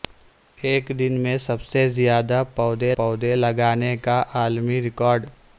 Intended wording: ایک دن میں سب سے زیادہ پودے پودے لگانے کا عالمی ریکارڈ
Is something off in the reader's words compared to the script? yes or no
no